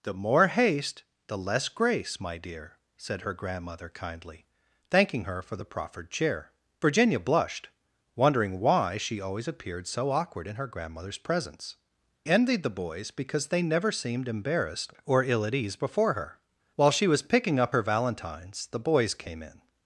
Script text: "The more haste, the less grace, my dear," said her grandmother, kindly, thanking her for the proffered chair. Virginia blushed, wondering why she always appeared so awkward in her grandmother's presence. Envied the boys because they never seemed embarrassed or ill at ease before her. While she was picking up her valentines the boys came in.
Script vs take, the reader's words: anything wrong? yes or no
no